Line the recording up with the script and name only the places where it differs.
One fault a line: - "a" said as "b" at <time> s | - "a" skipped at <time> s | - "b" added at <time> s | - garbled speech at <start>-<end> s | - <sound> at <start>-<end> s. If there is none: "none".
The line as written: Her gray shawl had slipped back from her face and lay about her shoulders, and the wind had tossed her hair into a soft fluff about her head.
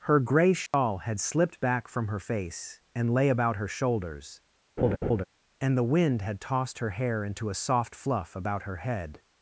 - dropout at 0.7-0.7 s
- laugh at 4.8-5.2 s